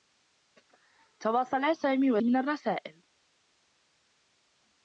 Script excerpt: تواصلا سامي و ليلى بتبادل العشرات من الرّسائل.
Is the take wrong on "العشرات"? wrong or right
wrong